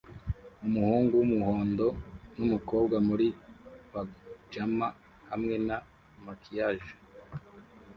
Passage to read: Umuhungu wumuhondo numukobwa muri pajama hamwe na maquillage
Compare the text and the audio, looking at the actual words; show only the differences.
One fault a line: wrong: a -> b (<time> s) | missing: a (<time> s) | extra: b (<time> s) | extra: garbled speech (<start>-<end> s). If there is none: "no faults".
no faults